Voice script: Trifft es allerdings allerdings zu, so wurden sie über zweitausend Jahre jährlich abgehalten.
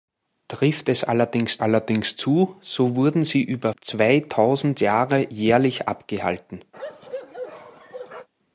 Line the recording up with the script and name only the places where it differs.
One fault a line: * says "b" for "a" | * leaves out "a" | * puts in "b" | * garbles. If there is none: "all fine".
all fine